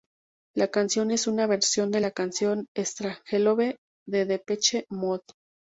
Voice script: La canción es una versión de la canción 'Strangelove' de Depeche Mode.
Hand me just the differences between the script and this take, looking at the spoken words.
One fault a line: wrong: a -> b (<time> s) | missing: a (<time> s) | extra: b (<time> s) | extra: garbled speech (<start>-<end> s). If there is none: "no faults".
no faults